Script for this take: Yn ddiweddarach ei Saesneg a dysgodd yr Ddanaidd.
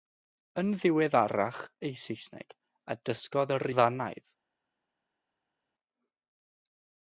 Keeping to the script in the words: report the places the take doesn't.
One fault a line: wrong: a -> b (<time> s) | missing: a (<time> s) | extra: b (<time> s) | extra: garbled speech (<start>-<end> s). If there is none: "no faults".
no faults